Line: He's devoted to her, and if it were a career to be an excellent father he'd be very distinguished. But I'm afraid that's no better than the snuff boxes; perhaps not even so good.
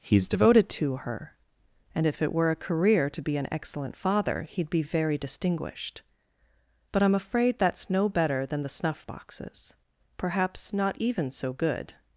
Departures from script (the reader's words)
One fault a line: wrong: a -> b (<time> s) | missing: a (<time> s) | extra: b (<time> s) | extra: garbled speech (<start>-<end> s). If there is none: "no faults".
no faults